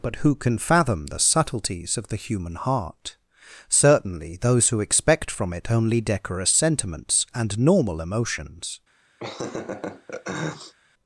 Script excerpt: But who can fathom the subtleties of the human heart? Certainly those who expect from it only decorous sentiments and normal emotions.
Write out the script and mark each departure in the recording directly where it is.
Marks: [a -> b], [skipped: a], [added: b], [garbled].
But who can fathom the subtleties of the human heart? Certainly those who expect from it only decorous sentiments and normal emotions.